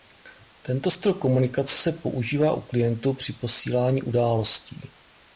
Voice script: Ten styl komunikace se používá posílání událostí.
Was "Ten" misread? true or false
true